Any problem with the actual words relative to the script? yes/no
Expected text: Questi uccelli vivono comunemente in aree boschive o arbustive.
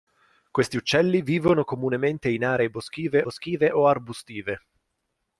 yes